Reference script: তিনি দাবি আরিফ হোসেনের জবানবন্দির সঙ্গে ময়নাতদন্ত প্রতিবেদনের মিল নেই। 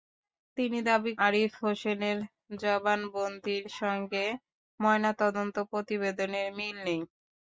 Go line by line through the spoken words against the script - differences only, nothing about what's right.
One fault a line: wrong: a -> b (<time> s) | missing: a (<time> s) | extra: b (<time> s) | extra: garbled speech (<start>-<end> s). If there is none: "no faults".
no faults